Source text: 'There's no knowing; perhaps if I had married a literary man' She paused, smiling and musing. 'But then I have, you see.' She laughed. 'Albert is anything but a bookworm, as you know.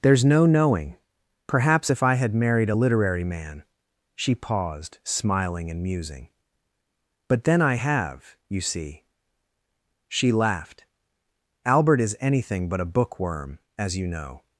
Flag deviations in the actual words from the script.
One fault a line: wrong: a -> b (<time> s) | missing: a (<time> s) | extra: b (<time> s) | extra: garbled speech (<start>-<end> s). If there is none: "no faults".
no faults